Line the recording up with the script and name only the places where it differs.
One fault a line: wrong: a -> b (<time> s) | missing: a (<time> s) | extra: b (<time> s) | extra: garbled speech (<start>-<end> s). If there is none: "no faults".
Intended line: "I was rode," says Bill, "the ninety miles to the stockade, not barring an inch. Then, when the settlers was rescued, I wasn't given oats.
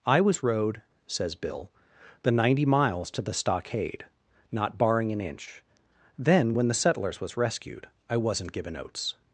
no faults